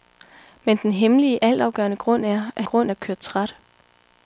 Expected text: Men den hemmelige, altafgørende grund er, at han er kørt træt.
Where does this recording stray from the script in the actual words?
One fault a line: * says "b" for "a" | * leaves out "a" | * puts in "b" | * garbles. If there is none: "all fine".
* says "grund" for "han"